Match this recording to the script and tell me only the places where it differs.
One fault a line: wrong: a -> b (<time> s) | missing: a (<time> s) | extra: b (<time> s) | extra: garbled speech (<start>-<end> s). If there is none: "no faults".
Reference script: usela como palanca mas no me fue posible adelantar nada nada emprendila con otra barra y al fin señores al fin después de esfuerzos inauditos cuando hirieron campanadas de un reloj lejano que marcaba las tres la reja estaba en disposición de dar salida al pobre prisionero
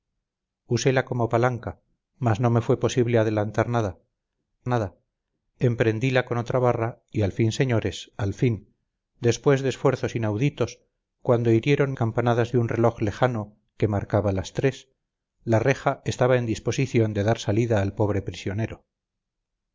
no faults